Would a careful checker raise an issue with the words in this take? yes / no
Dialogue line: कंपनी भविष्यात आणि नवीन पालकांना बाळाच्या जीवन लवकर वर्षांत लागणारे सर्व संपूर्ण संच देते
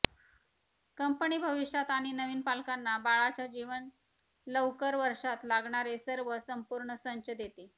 no